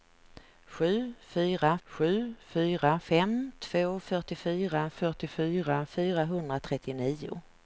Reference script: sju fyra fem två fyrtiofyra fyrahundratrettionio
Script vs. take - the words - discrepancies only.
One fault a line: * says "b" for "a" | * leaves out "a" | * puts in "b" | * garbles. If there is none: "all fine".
* puts in "sju fyra"
* puts in "fyrtiofyra"